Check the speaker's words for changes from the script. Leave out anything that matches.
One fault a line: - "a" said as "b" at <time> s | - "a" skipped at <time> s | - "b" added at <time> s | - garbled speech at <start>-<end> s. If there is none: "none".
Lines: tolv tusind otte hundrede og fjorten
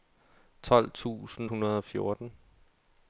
- "otte" skipped at 1.5 s